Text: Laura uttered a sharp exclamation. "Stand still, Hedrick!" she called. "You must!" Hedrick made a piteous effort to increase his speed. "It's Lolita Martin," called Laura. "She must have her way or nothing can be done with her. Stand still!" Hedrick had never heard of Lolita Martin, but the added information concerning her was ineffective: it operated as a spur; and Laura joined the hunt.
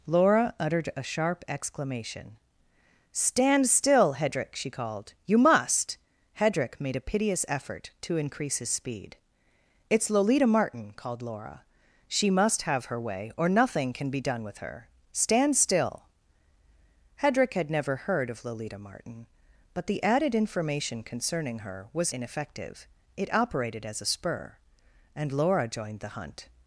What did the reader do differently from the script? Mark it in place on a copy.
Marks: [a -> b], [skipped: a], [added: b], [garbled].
Laura uttered a sharp exclamation. "Stand still, Hedrick!" she called. "You must!" Hedrick made a piteous effort to increase his speed. "It's Lolita Martin," called Laura. "She must have her way or nothing can be done with her. Stand still!" Hedrick had never heard of Lolita Martin, but the added information concerning her was ineffective: it operated as a spur; and Laura joined the hunt.